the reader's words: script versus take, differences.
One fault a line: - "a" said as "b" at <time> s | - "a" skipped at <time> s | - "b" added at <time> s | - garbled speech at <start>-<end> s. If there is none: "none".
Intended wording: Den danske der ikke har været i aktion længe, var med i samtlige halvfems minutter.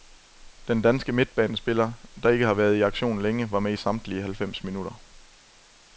- "midtbanespiller" added at 1.1 s